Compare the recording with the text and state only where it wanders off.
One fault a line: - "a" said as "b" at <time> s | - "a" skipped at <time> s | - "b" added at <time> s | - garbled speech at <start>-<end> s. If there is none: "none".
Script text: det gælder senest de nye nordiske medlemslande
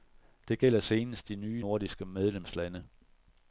none